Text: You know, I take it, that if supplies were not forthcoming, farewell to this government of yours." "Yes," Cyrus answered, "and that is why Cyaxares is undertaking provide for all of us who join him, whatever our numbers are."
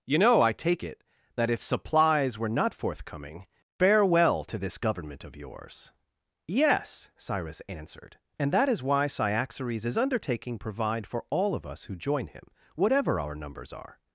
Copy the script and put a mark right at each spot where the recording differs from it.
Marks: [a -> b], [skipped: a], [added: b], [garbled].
You know, I take it, that if supplies were not forthcoming, farewell to this government of yours." "Yes," Cyrus answered, "and that is why Cyaxares is undertaking provide for all of us who join him, whatever our numbers are."